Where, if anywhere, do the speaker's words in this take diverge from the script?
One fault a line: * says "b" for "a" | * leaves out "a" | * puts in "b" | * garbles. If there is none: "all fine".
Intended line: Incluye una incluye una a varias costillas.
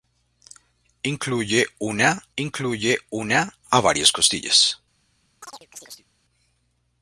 all fine